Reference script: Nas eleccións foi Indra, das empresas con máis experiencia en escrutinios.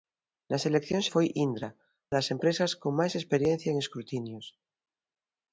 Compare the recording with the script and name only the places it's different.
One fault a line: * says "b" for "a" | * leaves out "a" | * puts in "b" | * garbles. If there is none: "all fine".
all fine